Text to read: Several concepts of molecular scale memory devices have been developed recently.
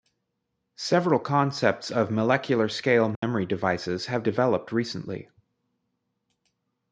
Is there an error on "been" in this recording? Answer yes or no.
yes